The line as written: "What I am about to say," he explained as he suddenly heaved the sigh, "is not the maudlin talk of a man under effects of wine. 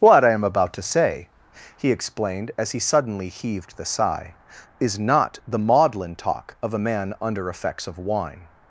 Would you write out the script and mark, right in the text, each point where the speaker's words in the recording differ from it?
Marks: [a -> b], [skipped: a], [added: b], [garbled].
"What I am about to say," he explained as he suddenly heaved the sigh, "is not the maudlin talk of a man under effects of wine.